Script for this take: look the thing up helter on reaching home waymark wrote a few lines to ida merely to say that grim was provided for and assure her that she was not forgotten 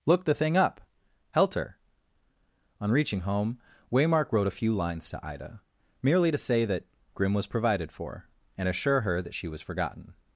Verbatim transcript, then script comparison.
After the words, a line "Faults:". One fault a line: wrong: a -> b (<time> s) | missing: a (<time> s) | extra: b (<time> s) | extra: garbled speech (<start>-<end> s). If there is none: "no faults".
look the thing up helter on reaching home waymark wrote a few lines to ida merely to say that grim was provided for and assure her that she was forgotten
Faults:
missing: not (9.6 s)